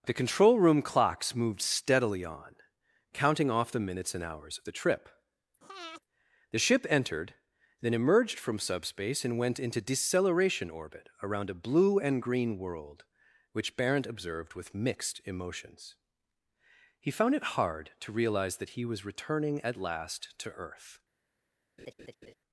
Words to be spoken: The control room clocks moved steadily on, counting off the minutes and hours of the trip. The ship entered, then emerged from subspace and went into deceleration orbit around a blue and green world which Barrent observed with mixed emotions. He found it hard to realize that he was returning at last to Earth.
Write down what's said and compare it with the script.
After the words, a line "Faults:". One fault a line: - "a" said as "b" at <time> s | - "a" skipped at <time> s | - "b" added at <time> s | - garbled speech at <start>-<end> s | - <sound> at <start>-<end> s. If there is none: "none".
The control room clocks moved steadily on, counting off the minutes and hours of the trip. The ship entered, then emerged from subspace and went into deceleration orbit around a blue and green world which Barrent observed with mixed emotions. He found it hard to realize that he was returning at last to Earth.
Faults:
- breath at 5.6-6.0 s
- laugh at 21.8-22.3 s